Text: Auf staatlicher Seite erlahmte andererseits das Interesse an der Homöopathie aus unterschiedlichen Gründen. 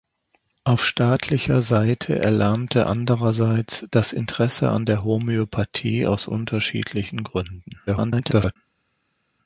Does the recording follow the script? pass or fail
fail